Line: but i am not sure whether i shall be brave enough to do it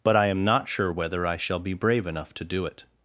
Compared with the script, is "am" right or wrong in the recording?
right